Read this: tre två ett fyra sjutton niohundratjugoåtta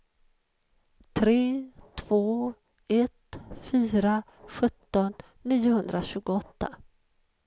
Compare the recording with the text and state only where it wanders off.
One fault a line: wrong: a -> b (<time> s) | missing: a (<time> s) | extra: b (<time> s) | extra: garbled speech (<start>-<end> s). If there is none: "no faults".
no faults